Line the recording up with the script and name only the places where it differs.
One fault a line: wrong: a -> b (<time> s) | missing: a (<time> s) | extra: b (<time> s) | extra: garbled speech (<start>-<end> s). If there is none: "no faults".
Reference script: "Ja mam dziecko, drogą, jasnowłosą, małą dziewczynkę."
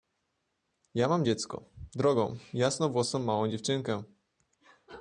no faults